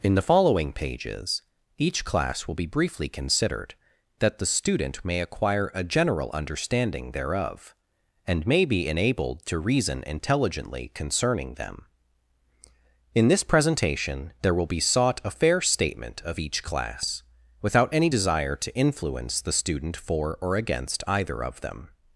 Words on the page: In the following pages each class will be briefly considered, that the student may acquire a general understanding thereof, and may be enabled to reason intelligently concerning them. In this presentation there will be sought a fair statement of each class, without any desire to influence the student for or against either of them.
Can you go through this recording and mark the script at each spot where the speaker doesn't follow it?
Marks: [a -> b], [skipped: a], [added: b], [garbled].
In the following pages each class will be briefly considered, that the student may acquire a general understanding thereof, and may be enabled to reason intelligently concerning them. In this presentation there will be sought a fair statement of each class, without any desire to influence the student for or against either of them.